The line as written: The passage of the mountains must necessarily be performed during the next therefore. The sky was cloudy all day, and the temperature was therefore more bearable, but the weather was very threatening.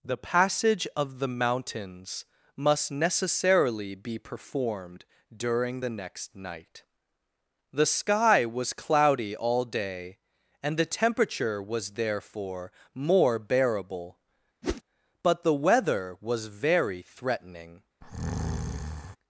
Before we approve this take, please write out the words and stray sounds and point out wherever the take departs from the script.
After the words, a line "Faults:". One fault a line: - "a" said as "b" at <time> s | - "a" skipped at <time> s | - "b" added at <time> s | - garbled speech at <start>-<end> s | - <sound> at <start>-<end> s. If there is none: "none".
The passage of the mountains must necessarily be performed during the next night. The sky was cloudy all day, and the temperature was therefore more bearable, but the weather was very threatening.
Faults:
- "therefore" said as "night" at 6.4 s
- whoosh at 14.6-14.8 s
- breath at 18.0-19.2 s